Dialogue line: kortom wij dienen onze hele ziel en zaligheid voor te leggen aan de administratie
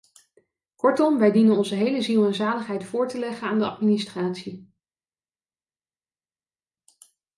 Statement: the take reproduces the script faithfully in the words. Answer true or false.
true